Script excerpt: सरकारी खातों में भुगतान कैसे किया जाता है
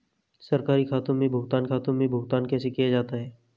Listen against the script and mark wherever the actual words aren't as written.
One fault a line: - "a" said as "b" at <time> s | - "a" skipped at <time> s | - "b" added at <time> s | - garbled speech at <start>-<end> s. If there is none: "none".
- "खातों में भुगतान" added at 1.6 s